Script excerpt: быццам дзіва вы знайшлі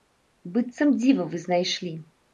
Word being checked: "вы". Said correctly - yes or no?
yes